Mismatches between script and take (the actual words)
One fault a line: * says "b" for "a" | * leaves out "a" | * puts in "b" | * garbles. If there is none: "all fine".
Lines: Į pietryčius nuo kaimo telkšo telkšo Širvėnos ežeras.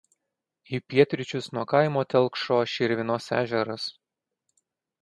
* leaves out "telkšo"